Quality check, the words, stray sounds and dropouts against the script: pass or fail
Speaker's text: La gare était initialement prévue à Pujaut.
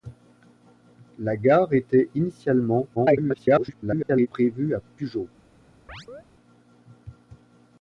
fail